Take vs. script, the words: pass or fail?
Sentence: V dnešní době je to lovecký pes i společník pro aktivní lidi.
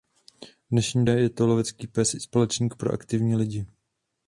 fail